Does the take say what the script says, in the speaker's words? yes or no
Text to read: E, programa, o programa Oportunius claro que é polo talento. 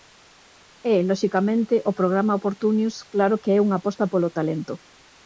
no